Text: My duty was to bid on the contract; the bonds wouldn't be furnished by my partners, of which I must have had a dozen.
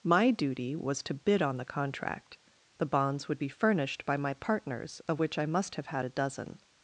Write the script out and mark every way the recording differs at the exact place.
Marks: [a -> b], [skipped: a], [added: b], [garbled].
My duty was to bid on the contract; the bonds [wouldn't -> would] be furnished by my partners, of which I must have had a dozen.